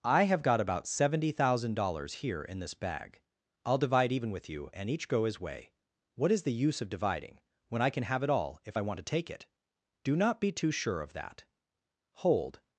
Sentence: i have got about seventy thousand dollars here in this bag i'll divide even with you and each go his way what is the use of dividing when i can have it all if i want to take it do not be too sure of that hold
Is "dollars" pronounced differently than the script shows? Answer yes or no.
no